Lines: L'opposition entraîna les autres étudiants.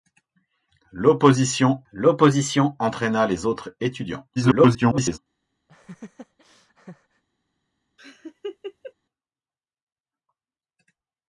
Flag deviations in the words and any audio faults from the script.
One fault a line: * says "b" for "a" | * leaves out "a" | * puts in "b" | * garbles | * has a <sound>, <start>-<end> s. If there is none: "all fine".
* puts in "l'opposition"
* garbles
* has a laugh, 5.7-7.2 s
* has a laugh, 8.0-8.9 s